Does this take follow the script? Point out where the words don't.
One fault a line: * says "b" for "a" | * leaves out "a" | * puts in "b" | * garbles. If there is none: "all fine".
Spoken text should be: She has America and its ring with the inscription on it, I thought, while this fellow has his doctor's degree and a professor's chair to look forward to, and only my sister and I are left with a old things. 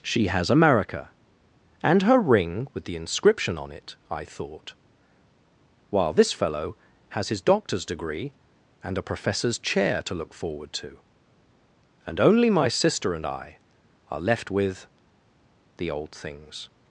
* says "her" for "its"
* says "the" for "a"